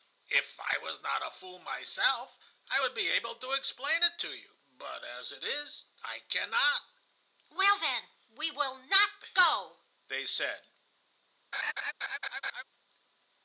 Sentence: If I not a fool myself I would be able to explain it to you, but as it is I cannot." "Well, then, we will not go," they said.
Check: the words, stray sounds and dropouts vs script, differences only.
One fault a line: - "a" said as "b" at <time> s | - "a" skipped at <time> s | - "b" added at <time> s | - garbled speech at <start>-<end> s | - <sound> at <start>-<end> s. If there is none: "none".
- "was" added at 0.8 s
- laugh at 11.5-12.6 s